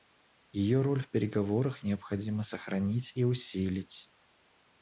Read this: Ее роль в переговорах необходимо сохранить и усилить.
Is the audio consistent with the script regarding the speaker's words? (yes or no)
yes